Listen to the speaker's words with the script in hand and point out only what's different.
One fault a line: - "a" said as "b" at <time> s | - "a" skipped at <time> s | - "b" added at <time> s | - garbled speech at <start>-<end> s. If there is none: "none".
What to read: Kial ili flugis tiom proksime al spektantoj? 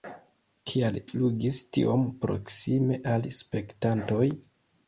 - "ili" skipped at 1.0 s